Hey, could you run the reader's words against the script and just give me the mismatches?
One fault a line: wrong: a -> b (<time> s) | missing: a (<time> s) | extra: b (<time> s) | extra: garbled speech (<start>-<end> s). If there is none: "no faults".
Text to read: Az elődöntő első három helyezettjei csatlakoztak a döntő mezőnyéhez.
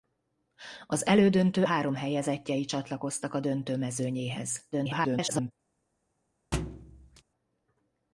missing: első (1.6 s)
extra: garbled speech (4.7-5.5 s)